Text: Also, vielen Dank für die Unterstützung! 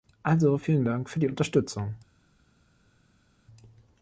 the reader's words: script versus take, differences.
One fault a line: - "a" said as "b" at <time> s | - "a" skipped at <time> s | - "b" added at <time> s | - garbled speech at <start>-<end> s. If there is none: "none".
none